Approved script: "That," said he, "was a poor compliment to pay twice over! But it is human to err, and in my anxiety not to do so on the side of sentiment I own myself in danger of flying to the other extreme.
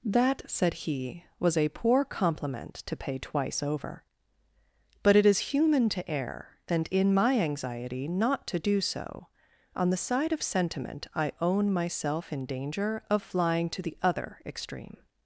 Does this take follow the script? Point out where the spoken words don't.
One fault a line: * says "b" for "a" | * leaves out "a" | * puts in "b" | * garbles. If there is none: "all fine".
all fine